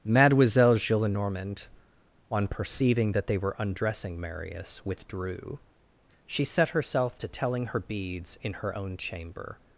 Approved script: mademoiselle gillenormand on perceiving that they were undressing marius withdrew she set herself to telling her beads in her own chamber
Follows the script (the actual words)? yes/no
yes